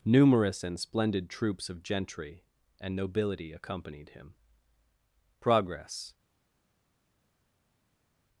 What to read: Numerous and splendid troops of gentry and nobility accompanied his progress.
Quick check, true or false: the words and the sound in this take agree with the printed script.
false